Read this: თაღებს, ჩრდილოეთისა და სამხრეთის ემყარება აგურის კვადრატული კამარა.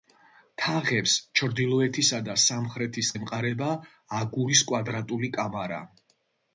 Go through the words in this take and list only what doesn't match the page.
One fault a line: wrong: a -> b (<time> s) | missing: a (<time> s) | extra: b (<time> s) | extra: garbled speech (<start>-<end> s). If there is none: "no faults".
no faults